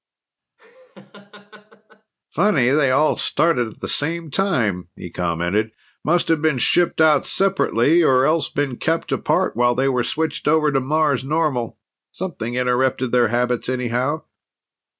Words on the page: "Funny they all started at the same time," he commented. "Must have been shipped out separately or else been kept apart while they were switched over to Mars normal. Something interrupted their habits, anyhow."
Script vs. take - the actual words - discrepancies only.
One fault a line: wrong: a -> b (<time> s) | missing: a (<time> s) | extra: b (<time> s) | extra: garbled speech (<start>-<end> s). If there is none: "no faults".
no faults